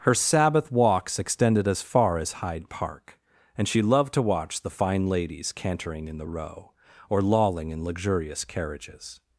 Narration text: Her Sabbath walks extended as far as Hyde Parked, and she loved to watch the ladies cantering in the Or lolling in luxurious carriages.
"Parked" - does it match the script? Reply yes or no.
no